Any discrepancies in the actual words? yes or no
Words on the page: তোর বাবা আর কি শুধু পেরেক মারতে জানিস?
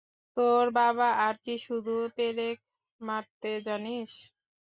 no